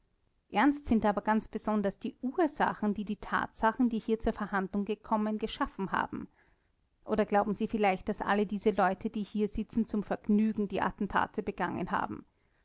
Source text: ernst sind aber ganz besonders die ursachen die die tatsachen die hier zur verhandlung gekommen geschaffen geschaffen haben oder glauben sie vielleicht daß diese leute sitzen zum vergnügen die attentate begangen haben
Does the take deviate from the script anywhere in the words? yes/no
yes